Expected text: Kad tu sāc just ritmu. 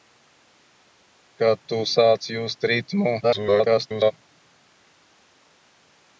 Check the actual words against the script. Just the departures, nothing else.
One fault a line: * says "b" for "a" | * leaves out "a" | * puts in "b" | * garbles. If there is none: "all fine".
* garbles